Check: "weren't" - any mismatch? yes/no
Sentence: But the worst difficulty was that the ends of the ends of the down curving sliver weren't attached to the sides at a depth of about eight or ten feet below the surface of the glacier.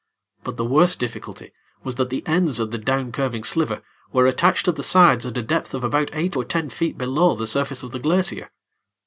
yes